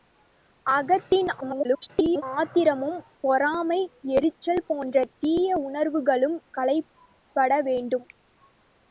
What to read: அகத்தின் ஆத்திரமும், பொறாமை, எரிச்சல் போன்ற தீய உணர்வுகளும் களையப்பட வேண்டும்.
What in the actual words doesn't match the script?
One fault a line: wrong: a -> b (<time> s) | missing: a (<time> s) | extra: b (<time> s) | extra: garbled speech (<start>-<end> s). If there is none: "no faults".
extra: garbled speech (1.4-2.2 s)